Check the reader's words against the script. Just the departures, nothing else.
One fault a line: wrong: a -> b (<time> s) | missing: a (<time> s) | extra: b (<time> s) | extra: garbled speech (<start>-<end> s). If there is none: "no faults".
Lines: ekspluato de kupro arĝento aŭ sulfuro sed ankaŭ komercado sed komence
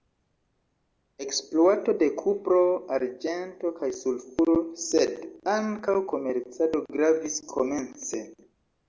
wrong: aŭ -> kaj (3.8 s)
wrong: sed -> gravis (7.0 s)